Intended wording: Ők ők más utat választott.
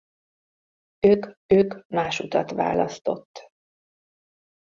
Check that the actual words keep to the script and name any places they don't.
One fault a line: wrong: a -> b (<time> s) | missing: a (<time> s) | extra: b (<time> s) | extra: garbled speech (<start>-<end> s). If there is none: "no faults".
no faults